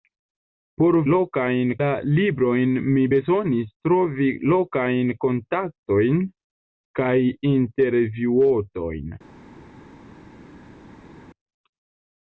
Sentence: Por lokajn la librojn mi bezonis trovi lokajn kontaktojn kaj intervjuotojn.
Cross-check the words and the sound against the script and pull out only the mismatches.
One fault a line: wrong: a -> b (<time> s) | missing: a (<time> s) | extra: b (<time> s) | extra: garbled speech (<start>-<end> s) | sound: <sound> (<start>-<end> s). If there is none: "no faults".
no faults